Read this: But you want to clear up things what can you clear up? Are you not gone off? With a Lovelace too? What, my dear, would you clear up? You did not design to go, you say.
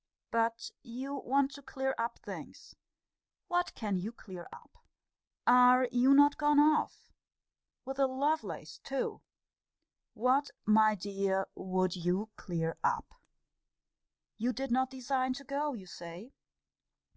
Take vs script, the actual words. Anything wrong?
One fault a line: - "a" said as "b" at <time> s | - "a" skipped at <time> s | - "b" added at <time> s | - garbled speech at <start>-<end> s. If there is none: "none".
none